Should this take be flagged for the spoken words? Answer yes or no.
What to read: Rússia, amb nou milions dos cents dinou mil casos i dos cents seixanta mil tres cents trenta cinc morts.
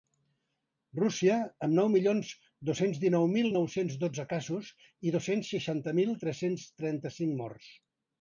yes